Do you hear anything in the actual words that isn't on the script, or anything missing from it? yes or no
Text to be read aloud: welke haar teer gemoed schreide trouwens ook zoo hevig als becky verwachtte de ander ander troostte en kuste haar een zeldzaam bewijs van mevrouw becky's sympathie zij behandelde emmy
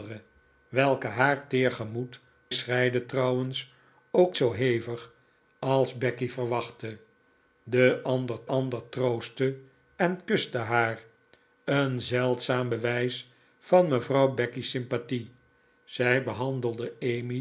no